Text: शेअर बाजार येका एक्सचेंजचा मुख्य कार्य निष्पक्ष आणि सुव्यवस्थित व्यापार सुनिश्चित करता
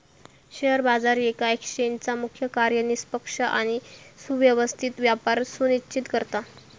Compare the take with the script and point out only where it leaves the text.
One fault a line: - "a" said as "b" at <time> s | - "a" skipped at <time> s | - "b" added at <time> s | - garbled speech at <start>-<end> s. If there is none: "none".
none